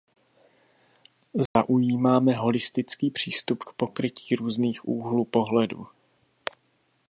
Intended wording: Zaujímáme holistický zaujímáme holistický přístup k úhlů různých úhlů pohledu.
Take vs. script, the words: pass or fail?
fail